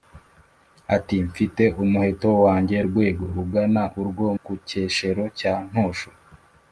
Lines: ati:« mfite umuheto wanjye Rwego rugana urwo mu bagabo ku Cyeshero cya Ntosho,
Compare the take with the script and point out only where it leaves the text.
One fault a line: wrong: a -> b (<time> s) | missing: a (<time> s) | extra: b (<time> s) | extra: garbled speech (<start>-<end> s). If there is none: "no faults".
missing: mu bagabo (4.3 s)